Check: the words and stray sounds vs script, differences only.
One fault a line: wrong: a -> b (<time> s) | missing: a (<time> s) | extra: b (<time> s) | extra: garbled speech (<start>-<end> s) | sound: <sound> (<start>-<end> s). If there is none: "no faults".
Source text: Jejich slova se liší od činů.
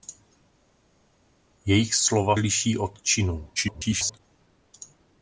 missing: se (2.4 s)
extra: garbled speech (3.6-4.2 s)